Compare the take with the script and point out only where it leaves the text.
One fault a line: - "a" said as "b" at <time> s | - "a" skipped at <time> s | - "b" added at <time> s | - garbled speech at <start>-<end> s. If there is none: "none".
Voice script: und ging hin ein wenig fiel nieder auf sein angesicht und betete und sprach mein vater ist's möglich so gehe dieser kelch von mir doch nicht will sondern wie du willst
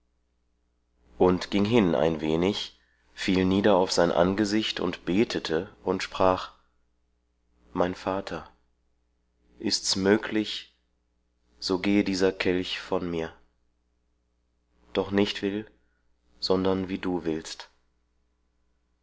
none